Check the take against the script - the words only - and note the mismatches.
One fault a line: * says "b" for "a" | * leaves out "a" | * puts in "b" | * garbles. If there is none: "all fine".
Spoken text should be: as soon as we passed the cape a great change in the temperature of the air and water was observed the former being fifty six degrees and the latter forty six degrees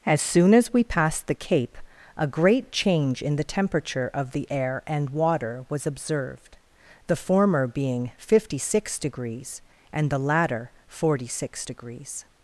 all fine